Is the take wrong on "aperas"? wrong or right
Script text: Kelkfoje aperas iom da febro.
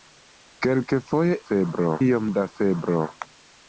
wrong